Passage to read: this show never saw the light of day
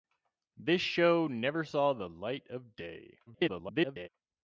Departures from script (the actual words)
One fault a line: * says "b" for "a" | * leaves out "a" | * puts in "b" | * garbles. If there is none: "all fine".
* garbles